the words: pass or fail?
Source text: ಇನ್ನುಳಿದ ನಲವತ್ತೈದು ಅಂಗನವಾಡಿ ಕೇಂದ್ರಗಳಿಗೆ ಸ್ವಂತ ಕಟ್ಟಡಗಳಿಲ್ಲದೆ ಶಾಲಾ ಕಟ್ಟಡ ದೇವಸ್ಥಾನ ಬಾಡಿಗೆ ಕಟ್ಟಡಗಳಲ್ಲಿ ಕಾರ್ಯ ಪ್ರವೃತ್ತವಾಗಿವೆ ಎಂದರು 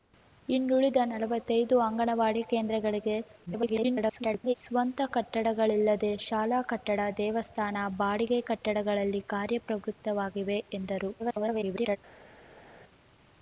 fail